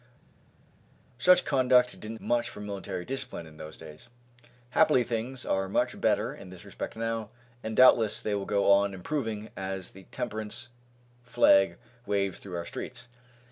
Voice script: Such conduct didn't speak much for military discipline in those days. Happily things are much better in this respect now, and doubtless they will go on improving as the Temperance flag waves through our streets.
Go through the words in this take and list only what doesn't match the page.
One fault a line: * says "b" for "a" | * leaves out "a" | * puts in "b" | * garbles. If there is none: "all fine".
* leaves out "speak"